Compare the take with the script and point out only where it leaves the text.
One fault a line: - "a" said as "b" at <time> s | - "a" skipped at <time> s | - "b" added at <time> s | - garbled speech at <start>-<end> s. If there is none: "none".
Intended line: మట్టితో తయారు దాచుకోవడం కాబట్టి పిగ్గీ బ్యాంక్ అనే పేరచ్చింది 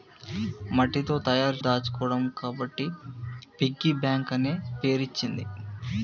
none